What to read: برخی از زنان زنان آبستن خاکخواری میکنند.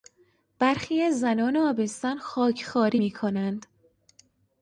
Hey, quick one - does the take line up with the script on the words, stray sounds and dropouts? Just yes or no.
no